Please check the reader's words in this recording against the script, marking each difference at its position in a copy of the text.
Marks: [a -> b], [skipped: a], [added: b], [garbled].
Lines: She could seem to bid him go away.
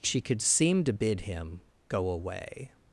She could seem to bid him go away.